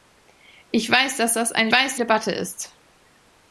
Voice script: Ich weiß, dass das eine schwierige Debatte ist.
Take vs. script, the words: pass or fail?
fail